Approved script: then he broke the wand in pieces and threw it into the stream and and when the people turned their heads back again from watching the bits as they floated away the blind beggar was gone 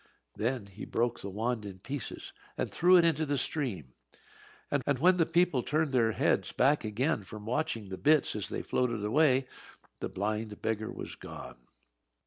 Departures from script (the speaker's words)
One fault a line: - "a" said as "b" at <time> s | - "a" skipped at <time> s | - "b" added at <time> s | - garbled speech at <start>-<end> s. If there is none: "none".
none